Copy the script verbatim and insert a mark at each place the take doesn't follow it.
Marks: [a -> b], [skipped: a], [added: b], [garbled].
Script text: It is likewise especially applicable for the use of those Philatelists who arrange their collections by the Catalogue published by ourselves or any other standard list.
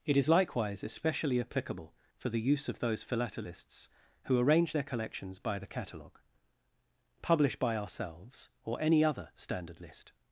It is likewise especially applicable for the use of those Philatelists who arrange their collections by the Catalogue [published -> publish] by ourselves or any other standard list.